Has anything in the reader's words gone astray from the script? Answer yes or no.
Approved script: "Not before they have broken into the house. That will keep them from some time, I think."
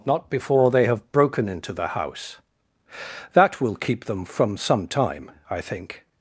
no